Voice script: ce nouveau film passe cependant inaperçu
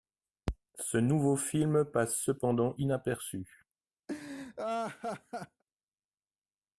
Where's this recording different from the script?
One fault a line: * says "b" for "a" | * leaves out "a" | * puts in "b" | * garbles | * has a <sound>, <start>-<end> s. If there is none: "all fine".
* has a laugh, 4.1-5.6 s